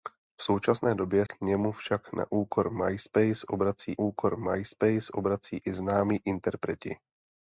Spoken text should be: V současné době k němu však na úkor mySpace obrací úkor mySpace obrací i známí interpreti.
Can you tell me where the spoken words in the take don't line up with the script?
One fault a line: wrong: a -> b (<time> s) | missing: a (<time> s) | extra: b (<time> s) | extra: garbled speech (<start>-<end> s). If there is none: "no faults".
no faults